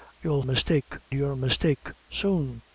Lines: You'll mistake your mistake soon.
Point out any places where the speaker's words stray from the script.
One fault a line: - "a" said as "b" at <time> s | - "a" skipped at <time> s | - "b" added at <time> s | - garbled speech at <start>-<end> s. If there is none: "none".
none